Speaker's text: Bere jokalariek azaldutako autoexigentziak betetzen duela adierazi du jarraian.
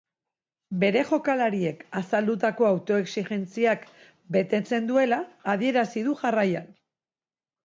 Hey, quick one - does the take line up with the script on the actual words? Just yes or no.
yes